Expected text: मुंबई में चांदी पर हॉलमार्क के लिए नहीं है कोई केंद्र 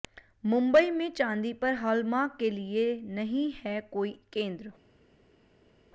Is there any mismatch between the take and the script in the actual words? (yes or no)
no